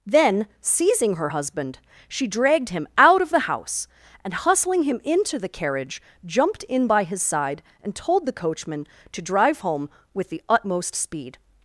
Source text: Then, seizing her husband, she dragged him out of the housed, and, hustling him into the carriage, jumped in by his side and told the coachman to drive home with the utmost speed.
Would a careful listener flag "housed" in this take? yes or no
yes